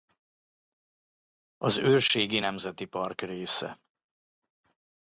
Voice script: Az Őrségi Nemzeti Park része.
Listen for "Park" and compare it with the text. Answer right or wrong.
right